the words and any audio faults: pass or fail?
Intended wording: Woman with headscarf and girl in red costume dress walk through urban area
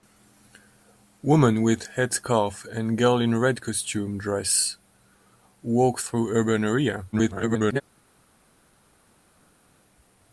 fail